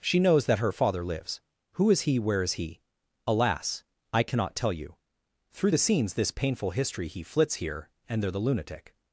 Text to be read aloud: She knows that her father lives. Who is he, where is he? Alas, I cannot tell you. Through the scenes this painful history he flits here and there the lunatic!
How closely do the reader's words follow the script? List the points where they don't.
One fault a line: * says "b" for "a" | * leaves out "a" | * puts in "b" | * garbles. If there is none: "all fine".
all fine